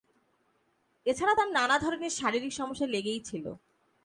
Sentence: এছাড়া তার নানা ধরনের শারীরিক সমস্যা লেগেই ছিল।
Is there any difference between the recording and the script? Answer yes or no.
no